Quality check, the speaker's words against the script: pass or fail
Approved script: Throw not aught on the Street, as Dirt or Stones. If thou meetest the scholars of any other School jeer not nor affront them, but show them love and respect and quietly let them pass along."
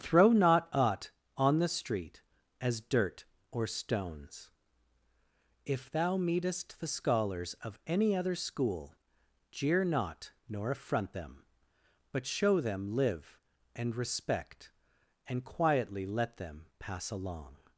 fail